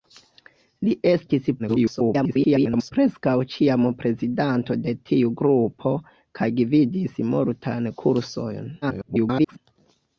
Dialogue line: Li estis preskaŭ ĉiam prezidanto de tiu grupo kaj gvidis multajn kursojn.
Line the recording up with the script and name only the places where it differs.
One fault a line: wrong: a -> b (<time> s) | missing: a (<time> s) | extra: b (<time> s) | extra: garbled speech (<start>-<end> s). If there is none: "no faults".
extra: garbled speech (1.6-2.9 s)
extra: garbled speech (8.8-9.6 s)